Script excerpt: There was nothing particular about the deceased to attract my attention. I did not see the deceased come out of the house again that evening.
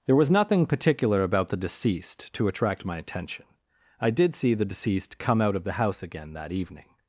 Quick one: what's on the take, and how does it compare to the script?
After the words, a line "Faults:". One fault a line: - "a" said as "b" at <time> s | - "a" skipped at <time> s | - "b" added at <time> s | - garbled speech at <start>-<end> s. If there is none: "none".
There was nothing particular about the deceased to attract my attention. I did see the deceased come out of the house again that evening.
Faults:
- "not" skipped at 4.3 s